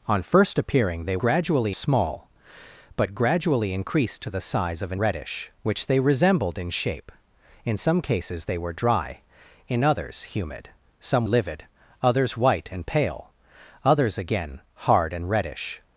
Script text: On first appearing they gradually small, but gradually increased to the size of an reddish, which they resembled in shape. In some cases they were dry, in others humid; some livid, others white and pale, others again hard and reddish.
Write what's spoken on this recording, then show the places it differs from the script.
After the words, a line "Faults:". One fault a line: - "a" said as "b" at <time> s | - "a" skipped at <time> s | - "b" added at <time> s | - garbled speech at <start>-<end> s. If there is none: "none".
On first appearing they gradually small, but gradually increased to the size of an reddish, which they resembled in shape. In some cases they were dry, in others humid; some livid, others white and pale, others again hard and reddish.
Faults:
none